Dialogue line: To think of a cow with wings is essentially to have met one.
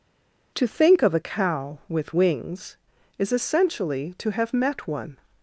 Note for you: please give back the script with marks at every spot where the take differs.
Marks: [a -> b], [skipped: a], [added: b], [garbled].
To think of a cow with wings is essentially to have met one.